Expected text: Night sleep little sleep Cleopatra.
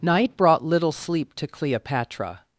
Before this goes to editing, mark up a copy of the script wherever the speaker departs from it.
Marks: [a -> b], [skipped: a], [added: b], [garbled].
Night [sleep -> brought] little sleep [added: to] Cleopatra.